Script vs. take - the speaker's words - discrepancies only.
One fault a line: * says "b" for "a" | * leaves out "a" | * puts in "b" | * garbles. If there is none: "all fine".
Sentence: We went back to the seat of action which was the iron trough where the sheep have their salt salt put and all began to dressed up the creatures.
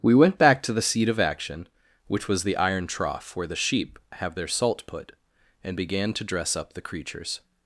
* leaves out "salt"
* leaves out "all"
* says "dress" for "dressed"